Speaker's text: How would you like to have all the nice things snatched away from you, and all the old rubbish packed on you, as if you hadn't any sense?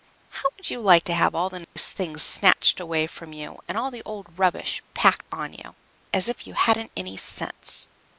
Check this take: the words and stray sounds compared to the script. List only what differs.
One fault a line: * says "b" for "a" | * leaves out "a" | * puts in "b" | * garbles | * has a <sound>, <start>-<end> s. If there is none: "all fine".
* has a dropout, 1.6-1.8 s